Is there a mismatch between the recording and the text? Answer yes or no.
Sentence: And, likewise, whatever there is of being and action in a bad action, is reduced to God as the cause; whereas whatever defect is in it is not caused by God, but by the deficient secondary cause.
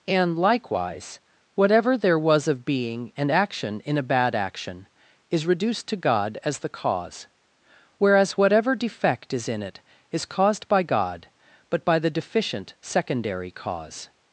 yes